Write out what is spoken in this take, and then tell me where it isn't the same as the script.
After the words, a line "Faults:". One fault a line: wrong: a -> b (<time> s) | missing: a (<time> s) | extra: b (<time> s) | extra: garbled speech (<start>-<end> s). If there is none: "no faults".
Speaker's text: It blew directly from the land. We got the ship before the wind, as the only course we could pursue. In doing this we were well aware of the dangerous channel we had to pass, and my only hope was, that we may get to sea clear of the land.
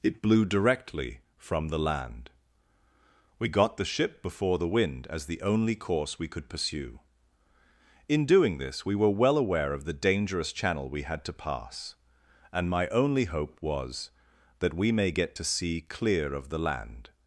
It blew directly from the land. We got the ship before the wind, as the only course we could pursue. In doing this we were well aware of the dangerous channel we had to pass, and my only hope was, that we may get to sea clear of the land.
Faults:
no faults